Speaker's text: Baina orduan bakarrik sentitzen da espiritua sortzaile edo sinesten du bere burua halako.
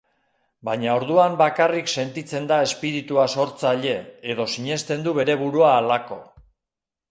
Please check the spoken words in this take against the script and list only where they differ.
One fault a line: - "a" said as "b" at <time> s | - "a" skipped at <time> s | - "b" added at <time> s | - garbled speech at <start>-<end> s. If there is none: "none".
none